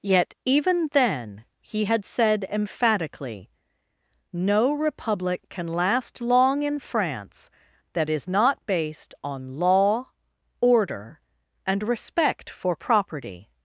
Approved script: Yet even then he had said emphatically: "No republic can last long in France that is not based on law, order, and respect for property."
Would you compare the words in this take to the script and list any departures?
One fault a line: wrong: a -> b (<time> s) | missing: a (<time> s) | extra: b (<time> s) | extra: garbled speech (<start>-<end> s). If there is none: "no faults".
no faults